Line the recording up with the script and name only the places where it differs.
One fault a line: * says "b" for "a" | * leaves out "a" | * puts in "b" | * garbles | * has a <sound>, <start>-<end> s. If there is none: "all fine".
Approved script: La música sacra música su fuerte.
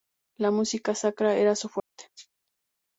* says "era" for "música"
* has a dropout, 1.8-1.9 s